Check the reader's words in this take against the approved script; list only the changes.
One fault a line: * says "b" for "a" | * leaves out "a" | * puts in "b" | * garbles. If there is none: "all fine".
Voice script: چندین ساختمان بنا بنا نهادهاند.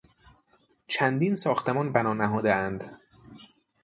* leaves out "بنا"